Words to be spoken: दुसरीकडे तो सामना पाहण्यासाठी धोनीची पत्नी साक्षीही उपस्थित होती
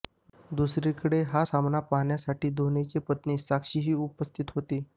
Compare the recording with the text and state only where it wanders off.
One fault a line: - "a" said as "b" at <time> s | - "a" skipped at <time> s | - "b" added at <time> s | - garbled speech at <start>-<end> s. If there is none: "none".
- "तो" said as "हा" at 1.2 s